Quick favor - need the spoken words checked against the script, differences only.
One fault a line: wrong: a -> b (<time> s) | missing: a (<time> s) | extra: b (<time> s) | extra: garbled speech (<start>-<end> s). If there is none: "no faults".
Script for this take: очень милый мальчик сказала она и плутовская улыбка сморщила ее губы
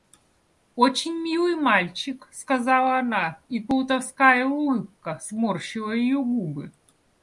no faults